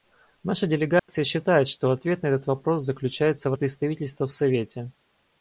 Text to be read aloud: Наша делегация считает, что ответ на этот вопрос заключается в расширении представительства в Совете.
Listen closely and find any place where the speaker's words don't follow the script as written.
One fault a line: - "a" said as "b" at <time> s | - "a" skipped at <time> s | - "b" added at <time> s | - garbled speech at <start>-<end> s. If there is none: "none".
- "расширении" skipped at 3.5 s